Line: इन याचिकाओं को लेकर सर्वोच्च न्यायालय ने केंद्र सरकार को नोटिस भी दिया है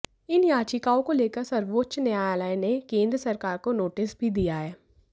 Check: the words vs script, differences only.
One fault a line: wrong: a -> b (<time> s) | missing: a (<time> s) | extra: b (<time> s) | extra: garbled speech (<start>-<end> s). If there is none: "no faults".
no faults